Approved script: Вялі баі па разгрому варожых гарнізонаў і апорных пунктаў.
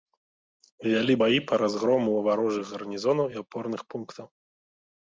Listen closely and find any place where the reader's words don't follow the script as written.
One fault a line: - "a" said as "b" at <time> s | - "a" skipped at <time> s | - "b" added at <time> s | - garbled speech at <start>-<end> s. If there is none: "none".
none